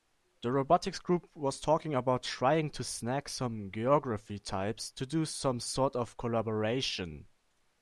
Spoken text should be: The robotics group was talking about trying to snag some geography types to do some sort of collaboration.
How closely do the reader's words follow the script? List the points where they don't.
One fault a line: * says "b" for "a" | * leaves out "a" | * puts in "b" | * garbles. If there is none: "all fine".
all fine